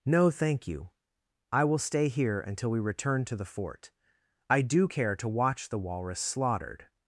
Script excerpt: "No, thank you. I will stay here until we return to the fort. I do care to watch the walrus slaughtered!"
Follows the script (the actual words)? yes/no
yes